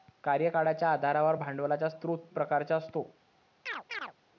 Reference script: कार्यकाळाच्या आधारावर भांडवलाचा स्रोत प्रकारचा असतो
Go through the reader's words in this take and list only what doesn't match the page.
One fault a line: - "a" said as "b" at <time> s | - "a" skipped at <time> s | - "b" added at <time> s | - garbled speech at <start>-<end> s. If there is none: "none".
none